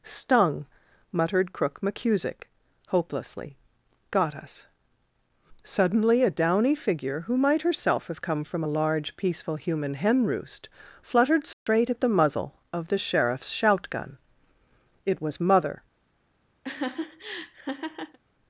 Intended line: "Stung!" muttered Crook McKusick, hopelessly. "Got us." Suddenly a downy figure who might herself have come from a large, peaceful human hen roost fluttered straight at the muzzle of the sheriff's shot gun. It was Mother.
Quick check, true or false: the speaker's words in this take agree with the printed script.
false